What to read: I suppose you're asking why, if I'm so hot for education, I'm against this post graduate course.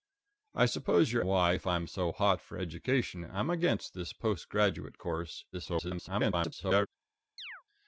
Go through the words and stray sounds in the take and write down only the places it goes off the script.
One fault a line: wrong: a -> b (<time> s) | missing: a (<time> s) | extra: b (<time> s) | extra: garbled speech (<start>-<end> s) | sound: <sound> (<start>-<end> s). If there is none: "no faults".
missing: asking (1.2 s)
extra: garbled speech (5.5-6.9 s)
sound: chirp (7.4-7.6 s)